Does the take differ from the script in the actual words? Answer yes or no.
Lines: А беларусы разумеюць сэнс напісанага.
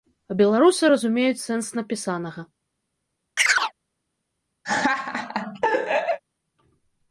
no